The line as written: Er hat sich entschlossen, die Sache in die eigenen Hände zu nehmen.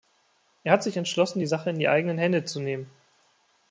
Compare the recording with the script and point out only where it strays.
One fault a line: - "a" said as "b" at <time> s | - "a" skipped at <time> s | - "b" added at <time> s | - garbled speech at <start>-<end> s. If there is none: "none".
none